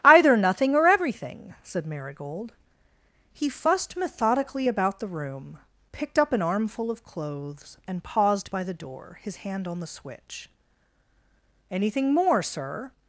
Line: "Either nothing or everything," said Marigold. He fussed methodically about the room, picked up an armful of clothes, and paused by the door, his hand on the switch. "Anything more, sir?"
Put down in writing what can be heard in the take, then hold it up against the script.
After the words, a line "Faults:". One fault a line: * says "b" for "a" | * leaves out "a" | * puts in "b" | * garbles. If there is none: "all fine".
"Either nothing or everything," said Marigold. He fussed methodically about the room, picked up an armful of clothes, and paused by the door, his hand on the switch. "Anything more, sir?"
Faults:
all fine